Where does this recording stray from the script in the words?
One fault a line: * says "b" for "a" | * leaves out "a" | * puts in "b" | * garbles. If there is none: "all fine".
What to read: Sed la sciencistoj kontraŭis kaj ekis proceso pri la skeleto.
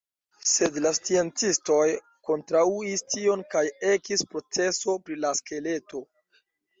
* puts in "tion"